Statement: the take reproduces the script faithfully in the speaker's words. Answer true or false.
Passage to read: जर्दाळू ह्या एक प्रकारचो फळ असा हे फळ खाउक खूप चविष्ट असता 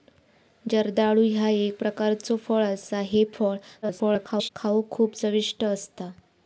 false